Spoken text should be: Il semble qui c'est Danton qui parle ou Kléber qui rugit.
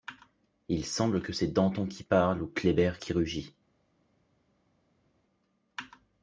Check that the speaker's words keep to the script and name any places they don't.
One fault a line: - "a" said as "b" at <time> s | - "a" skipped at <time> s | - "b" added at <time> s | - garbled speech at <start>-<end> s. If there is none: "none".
- "qui" said as "que" at 1.2 s